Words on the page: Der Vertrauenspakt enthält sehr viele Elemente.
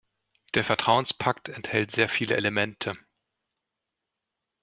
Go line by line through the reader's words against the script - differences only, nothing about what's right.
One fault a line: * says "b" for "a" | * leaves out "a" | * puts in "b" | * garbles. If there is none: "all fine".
all fine